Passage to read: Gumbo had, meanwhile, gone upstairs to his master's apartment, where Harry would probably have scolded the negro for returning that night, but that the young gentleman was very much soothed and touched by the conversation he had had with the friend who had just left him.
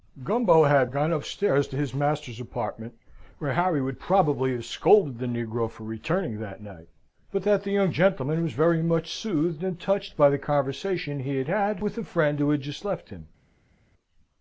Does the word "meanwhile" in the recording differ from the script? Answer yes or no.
yes